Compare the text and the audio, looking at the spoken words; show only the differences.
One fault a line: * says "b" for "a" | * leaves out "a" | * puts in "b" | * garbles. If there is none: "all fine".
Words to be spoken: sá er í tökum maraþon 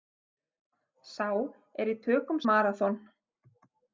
all fine